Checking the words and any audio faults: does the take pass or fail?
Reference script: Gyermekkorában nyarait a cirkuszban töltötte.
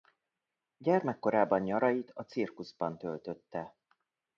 pass